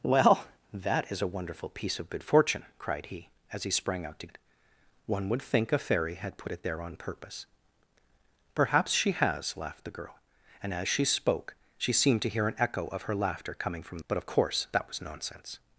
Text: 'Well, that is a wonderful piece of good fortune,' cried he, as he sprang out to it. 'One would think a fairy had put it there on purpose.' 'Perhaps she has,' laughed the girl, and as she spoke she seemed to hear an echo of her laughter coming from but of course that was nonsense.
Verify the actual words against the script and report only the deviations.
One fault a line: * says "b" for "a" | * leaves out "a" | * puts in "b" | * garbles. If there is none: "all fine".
all fine